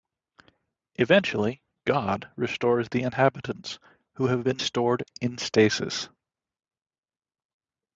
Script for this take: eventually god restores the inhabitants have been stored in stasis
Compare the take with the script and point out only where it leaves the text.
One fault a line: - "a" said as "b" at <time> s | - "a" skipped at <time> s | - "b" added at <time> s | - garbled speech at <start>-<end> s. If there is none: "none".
- "who" added at 4.1 s